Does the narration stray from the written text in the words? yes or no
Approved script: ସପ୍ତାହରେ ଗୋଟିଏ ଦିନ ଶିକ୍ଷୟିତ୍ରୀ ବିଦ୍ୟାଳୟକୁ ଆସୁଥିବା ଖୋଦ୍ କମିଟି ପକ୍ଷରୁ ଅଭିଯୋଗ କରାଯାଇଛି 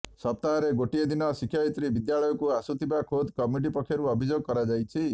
no